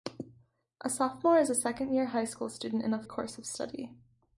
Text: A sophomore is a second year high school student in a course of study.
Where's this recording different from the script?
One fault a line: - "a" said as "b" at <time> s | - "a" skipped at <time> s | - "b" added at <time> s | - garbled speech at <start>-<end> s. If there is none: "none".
none